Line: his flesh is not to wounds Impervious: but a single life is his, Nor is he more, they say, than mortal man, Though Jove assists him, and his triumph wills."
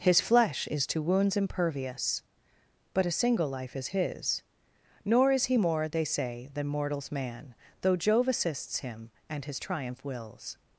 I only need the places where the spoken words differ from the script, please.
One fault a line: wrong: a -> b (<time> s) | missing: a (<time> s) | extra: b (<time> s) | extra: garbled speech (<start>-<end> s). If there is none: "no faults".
missing: not (0.9 s)
wrong: mortal -> mortals (6.7 s)